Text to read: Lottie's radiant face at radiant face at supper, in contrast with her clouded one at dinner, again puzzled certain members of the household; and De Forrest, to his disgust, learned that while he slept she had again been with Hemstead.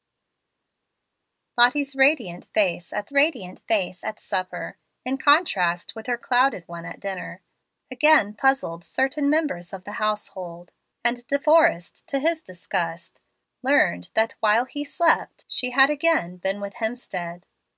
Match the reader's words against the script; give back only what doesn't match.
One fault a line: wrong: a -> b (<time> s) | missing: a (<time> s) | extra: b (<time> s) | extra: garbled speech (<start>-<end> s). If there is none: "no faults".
no faults